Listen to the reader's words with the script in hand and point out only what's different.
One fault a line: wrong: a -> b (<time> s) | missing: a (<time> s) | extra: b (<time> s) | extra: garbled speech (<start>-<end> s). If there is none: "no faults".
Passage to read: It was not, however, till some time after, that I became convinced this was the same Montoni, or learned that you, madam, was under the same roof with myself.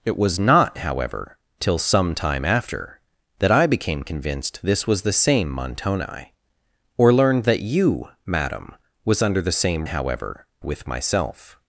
wrong: roof -> however (9.9 s)